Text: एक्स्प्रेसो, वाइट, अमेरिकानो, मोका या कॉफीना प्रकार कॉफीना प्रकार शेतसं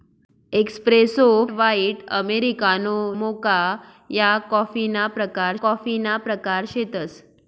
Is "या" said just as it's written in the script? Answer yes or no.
yes